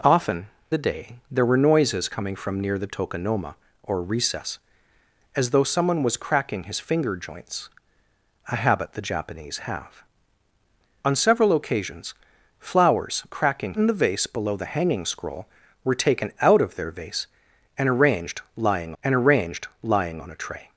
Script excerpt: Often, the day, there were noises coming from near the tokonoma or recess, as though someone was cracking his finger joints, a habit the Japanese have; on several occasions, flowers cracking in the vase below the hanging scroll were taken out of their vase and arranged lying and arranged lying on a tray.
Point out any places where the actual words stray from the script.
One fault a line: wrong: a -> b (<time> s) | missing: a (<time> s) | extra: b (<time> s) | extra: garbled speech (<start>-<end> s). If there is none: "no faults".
no faults